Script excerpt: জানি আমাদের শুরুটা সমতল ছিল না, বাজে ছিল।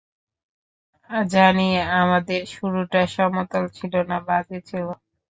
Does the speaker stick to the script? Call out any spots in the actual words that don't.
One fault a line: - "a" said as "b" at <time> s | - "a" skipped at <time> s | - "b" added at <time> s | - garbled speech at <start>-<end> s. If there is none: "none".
none